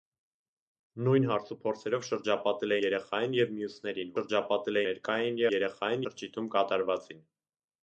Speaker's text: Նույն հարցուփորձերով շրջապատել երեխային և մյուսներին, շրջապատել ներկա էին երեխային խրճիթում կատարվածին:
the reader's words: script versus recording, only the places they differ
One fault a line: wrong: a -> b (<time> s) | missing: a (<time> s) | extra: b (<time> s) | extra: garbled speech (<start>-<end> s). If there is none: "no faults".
no faults